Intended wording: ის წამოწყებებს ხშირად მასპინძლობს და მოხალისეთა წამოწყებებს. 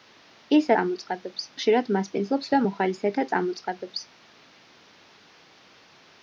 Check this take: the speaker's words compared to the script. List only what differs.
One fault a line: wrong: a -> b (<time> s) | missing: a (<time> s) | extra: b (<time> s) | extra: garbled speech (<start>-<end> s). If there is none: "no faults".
no faults